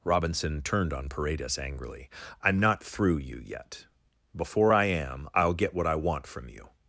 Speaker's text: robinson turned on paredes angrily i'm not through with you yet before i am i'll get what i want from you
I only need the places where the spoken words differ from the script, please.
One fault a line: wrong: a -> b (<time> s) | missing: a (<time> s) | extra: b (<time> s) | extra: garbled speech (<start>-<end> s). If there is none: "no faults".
missing: with (3.2 s)